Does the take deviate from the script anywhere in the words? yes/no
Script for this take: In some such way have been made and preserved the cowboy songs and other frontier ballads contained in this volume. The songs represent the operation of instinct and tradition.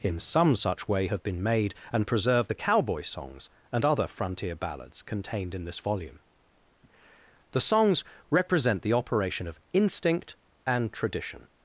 no